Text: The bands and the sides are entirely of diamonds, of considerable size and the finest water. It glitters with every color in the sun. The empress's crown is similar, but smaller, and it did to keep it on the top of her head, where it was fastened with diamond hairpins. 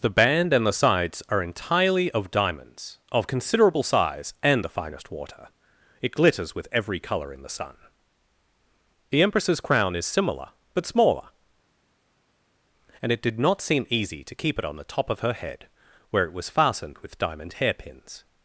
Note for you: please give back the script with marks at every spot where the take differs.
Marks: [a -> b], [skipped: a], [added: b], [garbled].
The [bands -> band] and the sides are entirely of diamonds, of considerable size and the finest water. It glitters with every color in the sun. The empress's crown is similar, but smaller, and it did [added: not seem easy] to keep it on the top of her head, where it was fastened with diamond hairpins.